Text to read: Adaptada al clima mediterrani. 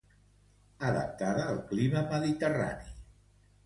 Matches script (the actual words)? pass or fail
pass